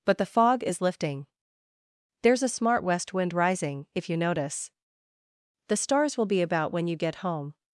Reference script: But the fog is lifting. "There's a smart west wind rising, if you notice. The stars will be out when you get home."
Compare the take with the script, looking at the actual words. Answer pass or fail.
fail